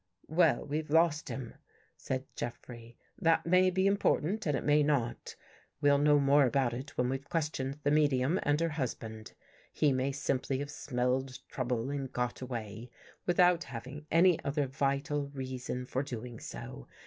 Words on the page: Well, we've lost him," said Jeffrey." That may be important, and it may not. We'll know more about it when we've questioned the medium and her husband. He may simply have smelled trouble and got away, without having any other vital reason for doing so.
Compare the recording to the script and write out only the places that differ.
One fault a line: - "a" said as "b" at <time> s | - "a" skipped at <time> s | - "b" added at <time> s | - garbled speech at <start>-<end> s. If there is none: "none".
none